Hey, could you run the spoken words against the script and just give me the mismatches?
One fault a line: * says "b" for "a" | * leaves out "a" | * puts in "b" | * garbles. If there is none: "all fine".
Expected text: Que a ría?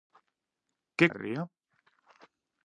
all fine